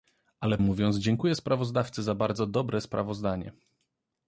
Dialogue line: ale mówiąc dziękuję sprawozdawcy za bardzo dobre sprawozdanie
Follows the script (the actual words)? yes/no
yes